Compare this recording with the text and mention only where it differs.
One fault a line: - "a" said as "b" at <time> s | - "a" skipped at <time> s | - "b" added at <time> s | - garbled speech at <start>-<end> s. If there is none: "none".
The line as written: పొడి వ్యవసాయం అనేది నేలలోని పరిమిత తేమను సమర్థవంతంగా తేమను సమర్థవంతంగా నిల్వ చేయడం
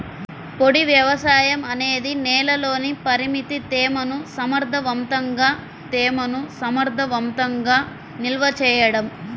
none